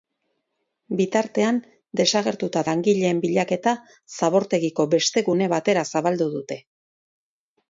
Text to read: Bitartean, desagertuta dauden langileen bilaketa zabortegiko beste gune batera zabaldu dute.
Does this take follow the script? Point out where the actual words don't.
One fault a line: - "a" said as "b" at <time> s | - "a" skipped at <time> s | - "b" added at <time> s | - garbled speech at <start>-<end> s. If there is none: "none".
- "dauden" skipped at 2.6 s